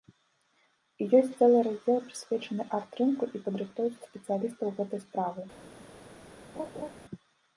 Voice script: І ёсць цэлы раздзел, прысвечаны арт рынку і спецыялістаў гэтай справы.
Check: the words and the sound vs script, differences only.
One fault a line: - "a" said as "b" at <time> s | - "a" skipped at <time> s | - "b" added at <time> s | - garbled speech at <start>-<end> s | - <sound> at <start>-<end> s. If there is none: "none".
- "падрыхтоўцы" added at 3.5 s
- laugh at 6.6-6.9 s